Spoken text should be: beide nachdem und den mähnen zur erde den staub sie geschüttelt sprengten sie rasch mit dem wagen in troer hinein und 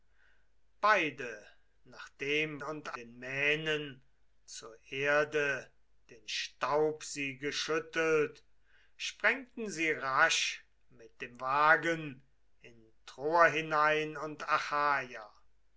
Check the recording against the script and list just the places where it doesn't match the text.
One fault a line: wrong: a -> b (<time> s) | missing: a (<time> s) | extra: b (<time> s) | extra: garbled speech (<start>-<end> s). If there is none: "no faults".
no faults